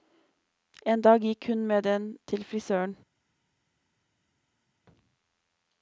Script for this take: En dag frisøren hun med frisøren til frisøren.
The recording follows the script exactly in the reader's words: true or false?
false